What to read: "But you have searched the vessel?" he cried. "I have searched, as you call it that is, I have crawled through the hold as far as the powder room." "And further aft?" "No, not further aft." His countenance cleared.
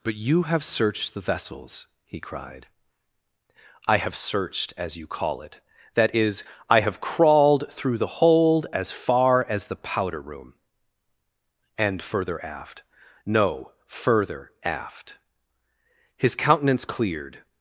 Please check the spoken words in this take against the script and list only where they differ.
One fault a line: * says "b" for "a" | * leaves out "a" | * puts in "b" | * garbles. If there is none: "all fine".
* says "vessels" for "vessel"
* leaves out "not"